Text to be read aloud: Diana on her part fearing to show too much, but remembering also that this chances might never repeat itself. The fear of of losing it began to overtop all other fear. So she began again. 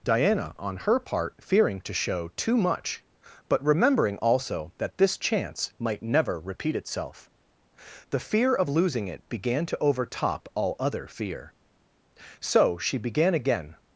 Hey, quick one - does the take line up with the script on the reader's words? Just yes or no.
no